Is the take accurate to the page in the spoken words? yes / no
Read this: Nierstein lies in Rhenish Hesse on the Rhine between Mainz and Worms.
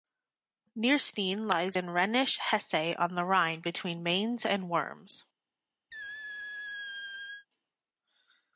yes